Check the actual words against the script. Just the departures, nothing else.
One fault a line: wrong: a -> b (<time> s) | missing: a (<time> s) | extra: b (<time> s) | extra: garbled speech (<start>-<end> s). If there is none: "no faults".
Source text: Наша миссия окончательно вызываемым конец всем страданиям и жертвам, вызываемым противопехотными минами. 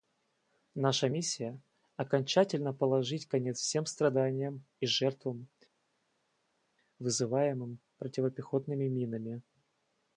wrong: вызываемым -> положить (2.7 s)